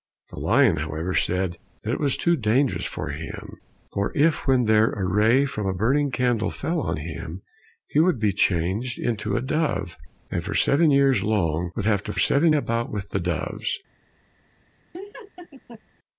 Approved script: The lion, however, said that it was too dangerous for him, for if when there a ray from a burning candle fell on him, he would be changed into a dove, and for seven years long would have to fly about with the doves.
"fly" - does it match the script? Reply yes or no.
no